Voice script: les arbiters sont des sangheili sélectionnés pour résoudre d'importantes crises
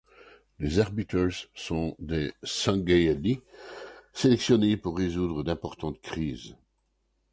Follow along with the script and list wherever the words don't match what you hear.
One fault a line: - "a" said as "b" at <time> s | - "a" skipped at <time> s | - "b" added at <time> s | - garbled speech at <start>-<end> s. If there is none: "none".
none